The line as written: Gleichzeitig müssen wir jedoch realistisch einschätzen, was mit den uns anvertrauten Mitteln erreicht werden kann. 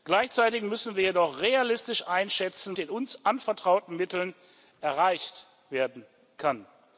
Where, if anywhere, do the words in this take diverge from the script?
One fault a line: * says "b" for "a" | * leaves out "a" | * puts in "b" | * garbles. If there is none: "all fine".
* leaves out "was mit"